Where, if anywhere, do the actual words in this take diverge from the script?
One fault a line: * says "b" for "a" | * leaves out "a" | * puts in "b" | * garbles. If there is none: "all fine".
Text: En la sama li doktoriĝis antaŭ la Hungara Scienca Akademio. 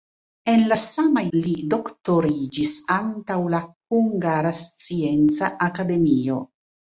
all fine